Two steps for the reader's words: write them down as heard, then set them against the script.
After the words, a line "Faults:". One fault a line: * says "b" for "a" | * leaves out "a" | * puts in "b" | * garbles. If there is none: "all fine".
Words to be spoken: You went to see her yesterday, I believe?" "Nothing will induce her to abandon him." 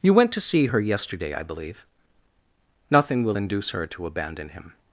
You went to see her yesterday, I believe?" "Nothing will induce her to abandon him."
Faults:
all fine